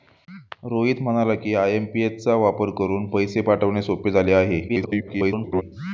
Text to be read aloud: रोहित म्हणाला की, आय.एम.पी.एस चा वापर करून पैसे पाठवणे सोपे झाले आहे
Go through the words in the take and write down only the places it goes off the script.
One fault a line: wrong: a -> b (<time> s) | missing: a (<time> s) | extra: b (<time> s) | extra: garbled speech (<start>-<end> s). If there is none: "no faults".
extra: garbled speech (4.7-5.6 s)